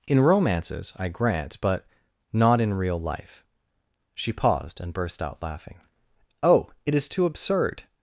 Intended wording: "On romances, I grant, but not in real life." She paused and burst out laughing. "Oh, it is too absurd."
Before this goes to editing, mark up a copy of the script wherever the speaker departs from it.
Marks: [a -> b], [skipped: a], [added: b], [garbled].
["On -> In] romances, I grant, but not in real life." She paused and burst out laughing. "Oh, it is too absurd."